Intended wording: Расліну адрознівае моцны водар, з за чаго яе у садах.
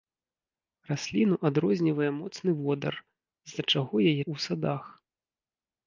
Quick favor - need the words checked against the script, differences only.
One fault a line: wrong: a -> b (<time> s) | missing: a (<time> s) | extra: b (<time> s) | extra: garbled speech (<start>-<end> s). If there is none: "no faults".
no faults